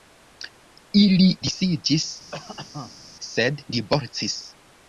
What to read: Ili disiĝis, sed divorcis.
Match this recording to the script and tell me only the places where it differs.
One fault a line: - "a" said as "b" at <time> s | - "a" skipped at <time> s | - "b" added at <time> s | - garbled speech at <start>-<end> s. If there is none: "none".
none